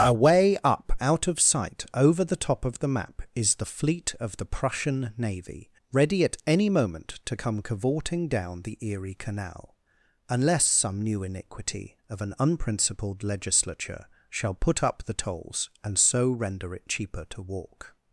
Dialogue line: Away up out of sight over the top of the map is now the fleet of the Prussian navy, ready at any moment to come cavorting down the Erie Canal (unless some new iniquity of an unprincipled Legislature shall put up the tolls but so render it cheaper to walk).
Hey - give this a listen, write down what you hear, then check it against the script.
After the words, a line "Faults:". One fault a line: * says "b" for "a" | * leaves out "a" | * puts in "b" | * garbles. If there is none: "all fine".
Away up out of sight over the top of the map is the fleet of the Prussian navy, ready at any moment to come cavorting down the Erie Canal (unless some new iniquity of an unprincipled Legislature shall put up the tolls and so render it cheaper to walk).
Faults:
* leaves out "now"
* says "and" for "but"